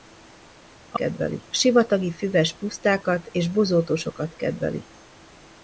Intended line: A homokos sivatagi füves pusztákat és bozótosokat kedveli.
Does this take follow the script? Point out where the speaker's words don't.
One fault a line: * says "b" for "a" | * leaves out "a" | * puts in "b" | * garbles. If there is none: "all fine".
* says "kedveli" for "homokos"